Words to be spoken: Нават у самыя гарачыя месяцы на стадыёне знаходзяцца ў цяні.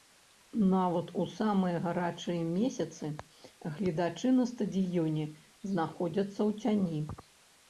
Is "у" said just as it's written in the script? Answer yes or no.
yes